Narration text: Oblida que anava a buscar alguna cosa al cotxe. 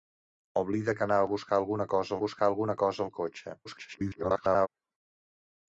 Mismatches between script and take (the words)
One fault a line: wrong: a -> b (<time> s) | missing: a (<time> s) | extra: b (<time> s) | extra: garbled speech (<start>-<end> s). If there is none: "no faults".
extra: buscar alguna cosa (2.2 s)
extra: garbled speech (3.6-4.7 s)